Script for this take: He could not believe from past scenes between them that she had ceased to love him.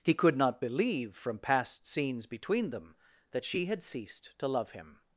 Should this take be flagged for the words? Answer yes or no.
no